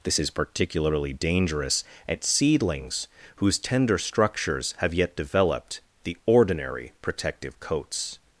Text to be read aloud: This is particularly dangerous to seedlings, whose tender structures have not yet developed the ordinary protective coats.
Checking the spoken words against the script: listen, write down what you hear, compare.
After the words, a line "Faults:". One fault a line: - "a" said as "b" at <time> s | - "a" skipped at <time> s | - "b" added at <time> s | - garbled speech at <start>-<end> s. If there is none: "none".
This is particularly dangerous at seedlings, whose tender structures have yet developed the ordinary protective coats.
Faults:
- "to" said as "at" at 2.1 s
- "not" skipped at 4.9 s